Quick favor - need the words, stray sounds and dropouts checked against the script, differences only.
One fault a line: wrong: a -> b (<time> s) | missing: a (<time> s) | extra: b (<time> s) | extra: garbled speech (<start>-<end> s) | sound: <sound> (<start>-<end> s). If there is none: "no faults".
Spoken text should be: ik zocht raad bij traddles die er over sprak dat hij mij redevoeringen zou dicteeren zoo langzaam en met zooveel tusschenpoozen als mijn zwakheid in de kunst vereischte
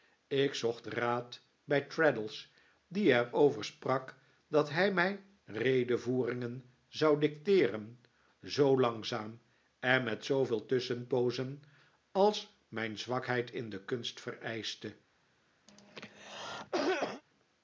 sound: cough (15.7-17.2 s)